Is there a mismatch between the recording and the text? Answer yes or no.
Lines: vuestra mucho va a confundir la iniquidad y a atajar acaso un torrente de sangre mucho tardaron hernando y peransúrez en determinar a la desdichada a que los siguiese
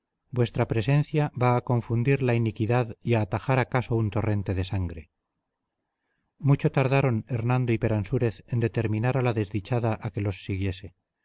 yes